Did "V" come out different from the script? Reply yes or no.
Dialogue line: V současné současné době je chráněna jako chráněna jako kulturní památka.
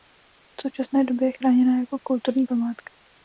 no